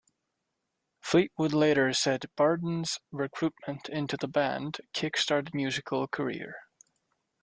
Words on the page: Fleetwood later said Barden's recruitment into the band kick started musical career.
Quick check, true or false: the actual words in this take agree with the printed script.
true